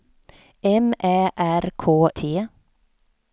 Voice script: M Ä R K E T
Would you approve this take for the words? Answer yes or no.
no